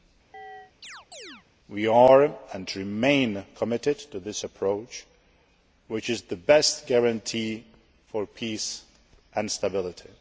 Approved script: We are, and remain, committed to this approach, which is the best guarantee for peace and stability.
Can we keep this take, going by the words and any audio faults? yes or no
no